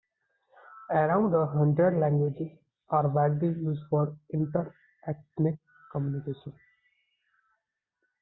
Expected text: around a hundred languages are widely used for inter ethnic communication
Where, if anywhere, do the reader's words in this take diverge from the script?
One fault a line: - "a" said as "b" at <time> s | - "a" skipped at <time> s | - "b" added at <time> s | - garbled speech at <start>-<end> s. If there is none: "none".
none